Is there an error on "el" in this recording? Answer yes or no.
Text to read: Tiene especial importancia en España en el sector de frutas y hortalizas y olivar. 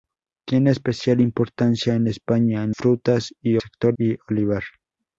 yes